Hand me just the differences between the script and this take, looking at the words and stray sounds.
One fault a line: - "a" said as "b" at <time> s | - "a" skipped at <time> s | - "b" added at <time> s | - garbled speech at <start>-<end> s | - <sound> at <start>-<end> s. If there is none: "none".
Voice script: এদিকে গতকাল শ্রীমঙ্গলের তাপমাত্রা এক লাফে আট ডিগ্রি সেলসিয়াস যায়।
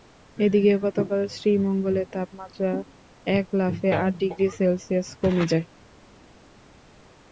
- "কমে" added at 5.2 s